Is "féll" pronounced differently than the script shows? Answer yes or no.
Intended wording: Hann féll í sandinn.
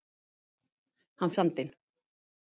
yes